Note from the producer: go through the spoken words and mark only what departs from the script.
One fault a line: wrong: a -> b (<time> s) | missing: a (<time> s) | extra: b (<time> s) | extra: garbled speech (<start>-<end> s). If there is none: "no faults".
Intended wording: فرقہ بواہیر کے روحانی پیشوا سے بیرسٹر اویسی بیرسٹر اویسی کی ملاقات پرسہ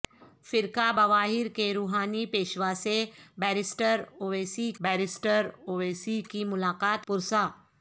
no faults